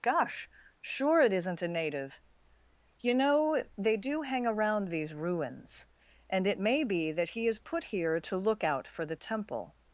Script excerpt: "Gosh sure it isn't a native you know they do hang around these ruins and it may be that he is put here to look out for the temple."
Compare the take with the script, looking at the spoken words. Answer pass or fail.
pass